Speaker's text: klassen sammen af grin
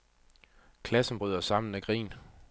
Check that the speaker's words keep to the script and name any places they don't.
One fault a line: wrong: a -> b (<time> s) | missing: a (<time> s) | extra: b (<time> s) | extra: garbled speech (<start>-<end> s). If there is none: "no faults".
extra: bryder (1.1 s)